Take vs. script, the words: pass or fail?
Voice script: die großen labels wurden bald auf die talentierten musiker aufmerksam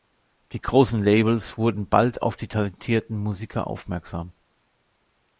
pass